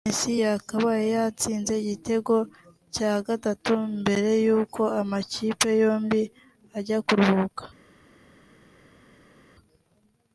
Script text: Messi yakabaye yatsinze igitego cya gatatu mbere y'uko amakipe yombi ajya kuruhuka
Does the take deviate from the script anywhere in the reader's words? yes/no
no